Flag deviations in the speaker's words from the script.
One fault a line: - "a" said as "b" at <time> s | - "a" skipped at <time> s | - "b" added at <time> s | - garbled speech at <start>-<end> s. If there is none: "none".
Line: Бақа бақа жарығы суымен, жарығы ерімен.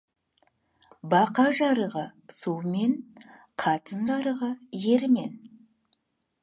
- "бақа" skipped at 1.4 s
- "қатын" added at 3.7 s